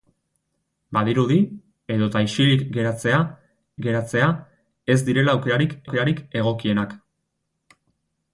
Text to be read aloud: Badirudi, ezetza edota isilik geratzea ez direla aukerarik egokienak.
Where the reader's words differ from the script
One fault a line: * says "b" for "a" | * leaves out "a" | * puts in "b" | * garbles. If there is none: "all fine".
* leaves out "ezetza"
* puts in "geratzea"
* puts in "aukerarik"